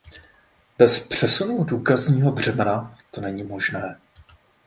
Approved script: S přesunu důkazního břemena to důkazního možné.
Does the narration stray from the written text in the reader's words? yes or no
yes